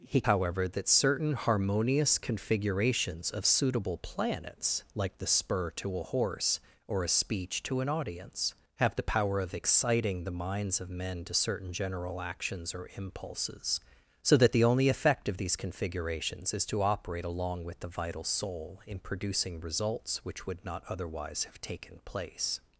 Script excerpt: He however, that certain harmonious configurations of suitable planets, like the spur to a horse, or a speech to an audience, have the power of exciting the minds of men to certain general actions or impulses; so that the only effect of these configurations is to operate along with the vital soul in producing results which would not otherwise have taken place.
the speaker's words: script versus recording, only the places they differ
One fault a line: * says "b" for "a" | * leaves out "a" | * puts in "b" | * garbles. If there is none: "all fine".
all fine